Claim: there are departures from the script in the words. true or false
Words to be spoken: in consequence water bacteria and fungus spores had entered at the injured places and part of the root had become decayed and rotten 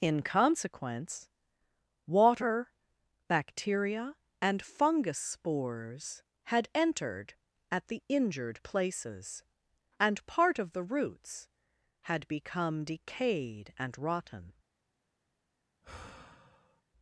true